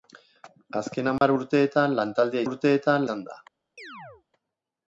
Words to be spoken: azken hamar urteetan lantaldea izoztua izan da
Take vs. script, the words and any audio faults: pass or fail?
fail